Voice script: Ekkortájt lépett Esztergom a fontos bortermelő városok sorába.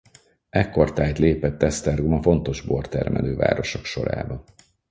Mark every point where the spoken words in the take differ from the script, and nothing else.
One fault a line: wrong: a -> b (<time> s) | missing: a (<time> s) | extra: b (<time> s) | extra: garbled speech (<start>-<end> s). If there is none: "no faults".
no faults